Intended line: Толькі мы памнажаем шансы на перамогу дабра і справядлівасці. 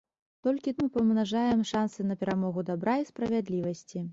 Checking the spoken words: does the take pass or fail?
pass